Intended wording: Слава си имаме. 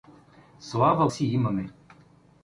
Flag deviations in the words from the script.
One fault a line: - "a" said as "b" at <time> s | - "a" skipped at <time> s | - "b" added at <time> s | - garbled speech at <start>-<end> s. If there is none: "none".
none